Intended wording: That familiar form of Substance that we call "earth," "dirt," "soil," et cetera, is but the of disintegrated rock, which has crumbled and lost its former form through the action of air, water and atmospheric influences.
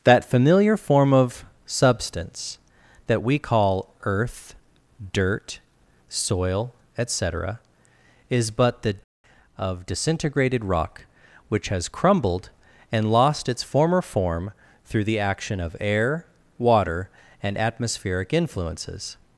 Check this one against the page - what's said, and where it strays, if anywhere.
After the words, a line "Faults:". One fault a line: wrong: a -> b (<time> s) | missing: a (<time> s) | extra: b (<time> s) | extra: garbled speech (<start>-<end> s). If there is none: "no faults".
That familiar form of Substance that we call "earth," "dirt," "soil," et cetera, is but the of disintegrated rock, which has crumbled and lost its former form through the action of air, water and atmospheric influences.
Faults:
no faults